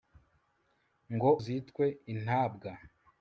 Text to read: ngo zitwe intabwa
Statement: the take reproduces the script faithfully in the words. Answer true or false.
true